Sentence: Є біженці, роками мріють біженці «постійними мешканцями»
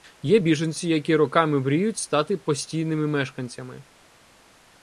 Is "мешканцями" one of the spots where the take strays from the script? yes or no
no